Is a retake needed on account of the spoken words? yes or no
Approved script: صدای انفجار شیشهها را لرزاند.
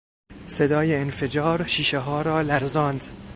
no